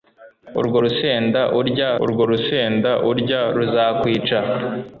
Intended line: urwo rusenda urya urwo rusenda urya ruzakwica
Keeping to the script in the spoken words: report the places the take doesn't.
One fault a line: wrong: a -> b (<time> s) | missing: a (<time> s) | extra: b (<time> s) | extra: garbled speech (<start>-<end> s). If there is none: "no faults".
no faults